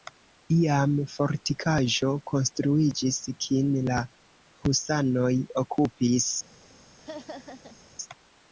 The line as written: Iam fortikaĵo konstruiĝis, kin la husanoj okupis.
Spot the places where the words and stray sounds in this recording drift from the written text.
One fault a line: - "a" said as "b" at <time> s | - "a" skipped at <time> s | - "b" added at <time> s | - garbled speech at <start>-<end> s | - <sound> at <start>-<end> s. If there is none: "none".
- laugh at 7.0-7.8 s